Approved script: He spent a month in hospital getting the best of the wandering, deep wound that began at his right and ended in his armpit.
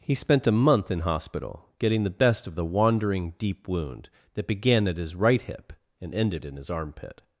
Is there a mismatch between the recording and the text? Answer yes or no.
yes